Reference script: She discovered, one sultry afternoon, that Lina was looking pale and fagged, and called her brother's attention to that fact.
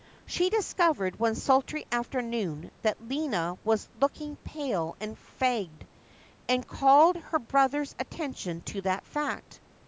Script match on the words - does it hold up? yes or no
yes